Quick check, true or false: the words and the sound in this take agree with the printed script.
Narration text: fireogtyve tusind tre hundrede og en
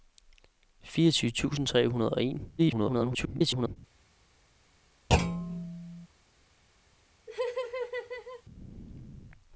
false